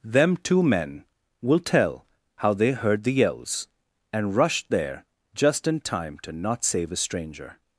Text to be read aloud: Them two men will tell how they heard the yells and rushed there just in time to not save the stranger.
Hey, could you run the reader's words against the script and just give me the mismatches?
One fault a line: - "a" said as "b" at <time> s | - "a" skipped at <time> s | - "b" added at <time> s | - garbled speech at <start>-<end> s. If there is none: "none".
- "the" said as "a" at 6.9 s